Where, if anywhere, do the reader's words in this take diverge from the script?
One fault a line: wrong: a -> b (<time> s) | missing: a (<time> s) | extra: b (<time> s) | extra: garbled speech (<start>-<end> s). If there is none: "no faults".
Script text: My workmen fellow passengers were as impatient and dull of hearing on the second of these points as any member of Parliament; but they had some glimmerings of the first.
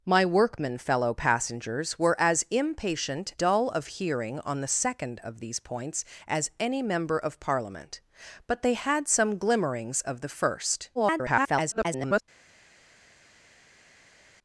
missing: and (3.4 s)
extra: garbled speech (10.9-12.2 s)